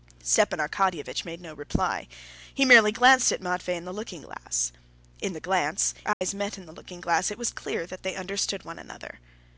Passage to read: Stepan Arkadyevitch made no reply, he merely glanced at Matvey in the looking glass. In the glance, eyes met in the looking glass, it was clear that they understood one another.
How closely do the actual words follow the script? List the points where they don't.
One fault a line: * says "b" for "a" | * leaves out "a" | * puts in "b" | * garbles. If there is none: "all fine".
all fine